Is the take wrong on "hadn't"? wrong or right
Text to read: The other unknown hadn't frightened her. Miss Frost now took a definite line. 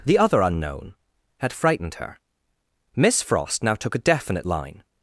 wrong